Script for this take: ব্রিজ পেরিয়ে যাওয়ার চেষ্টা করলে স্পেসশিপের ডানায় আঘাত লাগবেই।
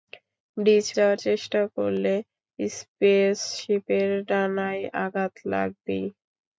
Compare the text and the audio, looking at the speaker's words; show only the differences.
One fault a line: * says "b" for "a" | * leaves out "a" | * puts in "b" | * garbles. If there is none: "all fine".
* leaves out "পেরিয়ে"